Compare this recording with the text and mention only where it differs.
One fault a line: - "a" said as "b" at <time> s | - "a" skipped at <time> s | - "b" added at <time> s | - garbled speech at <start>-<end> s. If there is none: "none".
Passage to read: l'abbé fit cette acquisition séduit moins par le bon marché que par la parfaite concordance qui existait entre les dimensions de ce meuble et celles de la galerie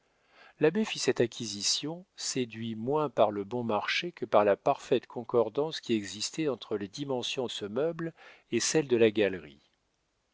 - "de" skipped at 7.5 s